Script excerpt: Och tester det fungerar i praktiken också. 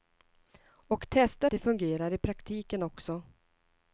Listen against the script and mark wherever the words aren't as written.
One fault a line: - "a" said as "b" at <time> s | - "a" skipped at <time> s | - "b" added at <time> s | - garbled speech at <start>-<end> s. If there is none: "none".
none